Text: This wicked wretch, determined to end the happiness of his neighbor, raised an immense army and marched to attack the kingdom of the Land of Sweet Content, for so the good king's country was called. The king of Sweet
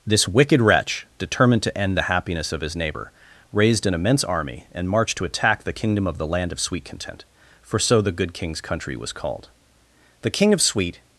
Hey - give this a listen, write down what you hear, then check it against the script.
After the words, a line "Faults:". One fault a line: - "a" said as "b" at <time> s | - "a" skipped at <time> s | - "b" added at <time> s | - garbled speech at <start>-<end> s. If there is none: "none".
This wicked wretch, determined to end the happiness of his neighbor, raised an immense army and marched to attack the kingdom of the Land of Sweet Content, for so the good king's country was called. The king of Sweet
Faults:
none